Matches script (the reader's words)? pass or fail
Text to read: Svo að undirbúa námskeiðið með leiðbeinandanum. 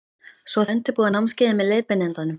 pass